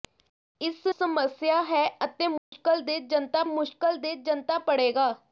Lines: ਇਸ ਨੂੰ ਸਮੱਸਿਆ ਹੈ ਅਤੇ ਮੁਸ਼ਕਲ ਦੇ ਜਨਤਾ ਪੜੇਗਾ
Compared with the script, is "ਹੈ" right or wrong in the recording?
right